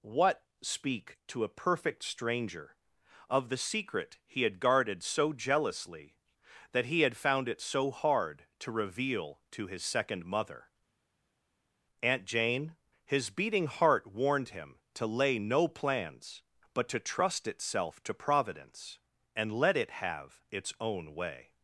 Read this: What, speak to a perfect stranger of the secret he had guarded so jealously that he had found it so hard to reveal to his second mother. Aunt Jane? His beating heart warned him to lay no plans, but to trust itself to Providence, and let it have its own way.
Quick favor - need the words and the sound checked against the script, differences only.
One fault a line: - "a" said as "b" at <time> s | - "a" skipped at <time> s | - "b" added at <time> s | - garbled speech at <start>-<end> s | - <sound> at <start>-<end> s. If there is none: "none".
none